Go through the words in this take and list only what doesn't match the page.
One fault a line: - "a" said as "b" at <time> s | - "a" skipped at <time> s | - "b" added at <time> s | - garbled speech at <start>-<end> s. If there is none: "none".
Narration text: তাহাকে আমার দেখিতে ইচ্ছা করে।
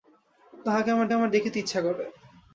- "আমার" added at 1.1 s